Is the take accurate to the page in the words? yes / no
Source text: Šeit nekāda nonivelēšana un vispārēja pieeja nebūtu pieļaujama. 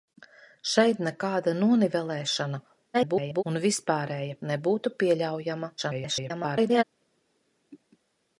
no